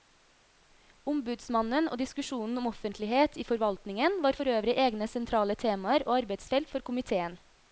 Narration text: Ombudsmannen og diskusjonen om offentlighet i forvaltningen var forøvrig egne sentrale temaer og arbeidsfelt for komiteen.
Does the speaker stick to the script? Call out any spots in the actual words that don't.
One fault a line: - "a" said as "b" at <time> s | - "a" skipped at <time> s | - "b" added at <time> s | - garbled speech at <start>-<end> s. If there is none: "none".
none